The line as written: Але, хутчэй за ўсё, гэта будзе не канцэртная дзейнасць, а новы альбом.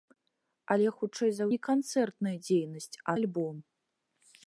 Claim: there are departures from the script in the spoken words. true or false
true